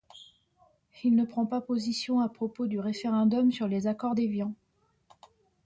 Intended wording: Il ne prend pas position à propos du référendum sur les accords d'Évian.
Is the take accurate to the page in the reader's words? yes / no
yes